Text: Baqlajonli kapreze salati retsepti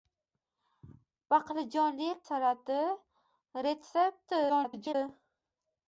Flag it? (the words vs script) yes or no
yes